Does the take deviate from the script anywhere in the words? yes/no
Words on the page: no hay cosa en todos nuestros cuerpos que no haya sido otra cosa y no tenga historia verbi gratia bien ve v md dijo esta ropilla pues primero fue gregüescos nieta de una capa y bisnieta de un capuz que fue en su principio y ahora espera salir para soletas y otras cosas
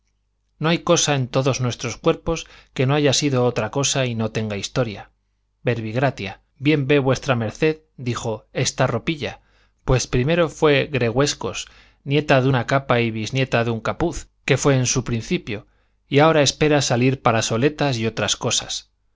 no